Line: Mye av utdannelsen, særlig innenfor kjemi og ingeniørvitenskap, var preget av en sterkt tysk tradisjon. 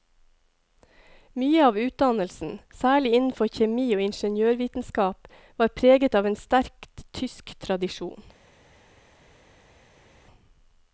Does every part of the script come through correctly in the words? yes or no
yes